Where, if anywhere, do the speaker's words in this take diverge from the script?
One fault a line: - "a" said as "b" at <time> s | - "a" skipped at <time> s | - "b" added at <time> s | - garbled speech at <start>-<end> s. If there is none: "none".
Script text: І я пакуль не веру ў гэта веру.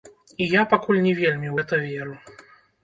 - "веру" said as "вельмі" at 1.2 s